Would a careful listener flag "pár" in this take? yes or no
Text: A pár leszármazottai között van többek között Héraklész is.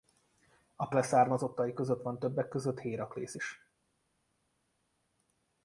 yes